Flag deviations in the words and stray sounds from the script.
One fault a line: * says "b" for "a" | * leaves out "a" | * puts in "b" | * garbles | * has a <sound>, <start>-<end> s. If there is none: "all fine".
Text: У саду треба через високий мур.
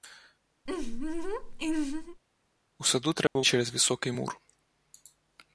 * has a laugh, 0.7-2.2 s
* has a dropout, 3.3-3.4 s